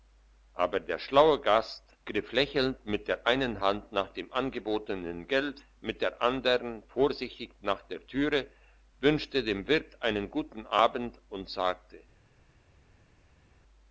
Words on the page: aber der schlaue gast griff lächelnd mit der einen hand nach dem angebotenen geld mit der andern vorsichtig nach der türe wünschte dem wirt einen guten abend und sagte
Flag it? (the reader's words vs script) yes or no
no